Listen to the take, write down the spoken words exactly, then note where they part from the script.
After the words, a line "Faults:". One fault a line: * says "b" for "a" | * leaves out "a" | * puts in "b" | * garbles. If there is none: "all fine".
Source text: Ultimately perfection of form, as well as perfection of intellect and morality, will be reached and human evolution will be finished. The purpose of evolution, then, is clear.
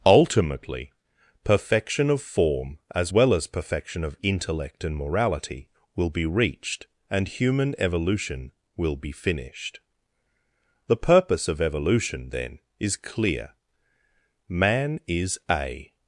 Ultimately perfection of form, as well as perfection of intellect and morality, will be reached and human evolution will be finished. The purpose of evolution, then, is clear. Man is a
Faults:
* puts in "Man is a"